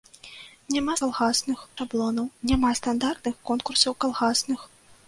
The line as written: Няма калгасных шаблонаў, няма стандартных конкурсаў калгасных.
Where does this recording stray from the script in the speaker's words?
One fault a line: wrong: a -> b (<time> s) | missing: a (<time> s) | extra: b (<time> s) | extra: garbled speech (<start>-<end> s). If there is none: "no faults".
no faults